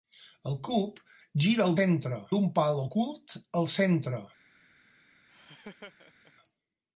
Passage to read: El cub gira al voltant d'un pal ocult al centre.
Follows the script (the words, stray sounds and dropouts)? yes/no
no